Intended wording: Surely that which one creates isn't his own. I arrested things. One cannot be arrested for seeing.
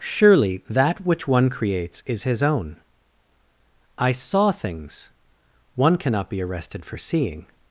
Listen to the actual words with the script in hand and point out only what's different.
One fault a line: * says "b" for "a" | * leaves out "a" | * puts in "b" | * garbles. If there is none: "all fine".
* says "is" for "isn't"
* says "saw" for "arrested"